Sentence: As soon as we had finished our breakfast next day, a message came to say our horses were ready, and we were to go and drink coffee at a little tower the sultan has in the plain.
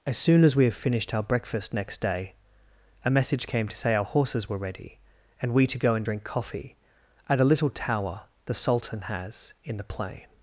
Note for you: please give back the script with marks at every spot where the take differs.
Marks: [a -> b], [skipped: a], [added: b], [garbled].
As soon as we [had -> have] finished our breakfast next day, a message came to say our horses were ready, and we [skipped: were] to go and drink coffee at a little tower the sultan has in the plain.